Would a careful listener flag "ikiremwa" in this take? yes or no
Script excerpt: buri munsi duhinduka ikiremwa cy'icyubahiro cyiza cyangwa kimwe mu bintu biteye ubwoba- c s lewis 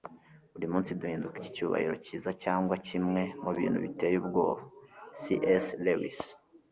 yes